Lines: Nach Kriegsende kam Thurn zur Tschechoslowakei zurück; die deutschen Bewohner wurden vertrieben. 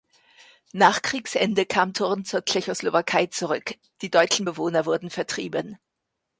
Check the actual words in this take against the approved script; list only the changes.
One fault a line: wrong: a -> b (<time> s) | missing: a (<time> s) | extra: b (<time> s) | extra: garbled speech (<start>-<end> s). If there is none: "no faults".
no faults